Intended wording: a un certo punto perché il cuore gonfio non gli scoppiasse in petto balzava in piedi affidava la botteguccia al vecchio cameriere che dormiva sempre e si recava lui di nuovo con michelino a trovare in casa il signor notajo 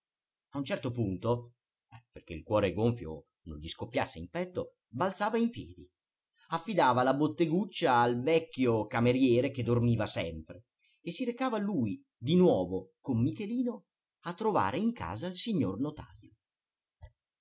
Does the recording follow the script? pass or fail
pass